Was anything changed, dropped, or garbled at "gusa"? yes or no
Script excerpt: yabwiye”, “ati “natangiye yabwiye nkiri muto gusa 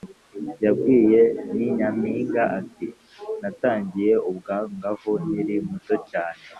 yes